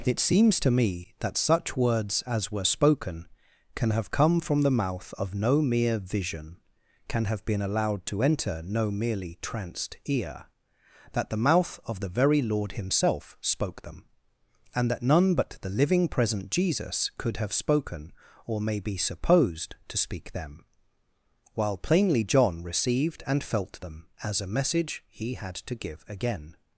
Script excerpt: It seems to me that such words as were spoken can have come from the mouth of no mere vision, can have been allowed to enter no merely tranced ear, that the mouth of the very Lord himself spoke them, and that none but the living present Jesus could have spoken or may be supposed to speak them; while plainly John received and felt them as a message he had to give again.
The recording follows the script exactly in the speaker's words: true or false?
true